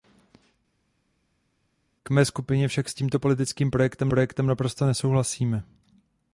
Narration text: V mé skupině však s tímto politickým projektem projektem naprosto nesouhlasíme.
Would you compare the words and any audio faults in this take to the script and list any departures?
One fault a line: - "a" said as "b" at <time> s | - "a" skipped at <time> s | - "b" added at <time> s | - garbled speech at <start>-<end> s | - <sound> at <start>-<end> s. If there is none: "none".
none